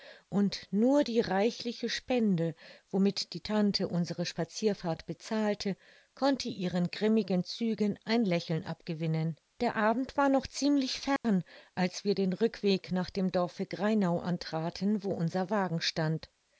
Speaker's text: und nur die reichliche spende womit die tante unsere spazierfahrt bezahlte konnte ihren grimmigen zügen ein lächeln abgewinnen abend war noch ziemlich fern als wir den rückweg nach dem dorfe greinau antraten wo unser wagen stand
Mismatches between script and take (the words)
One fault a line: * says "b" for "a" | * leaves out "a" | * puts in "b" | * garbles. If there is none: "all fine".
* puts in "der"